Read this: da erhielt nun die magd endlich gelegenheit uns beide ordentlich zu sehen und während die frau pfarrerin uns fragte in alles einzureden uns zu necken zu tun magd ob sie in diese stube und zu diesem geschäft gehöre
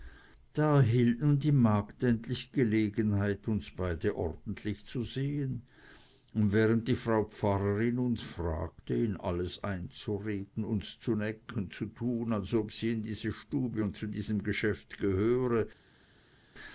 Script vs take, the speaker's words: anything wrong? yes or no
yes